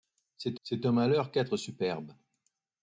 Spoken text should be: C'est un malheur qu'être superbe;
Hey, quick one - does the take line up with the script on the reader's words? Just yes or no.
no